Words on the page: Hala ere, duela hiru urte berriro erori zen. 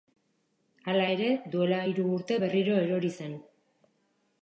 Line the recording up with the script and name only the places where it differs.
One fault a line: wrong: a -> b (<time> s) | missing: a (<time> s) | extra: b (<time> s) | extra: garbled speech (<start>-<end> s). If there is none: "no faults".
no faults